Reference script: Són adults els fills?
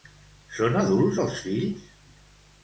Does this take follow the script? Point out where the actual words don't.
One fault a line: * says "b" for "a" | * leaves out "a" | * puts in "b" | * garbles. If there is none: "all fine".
all fine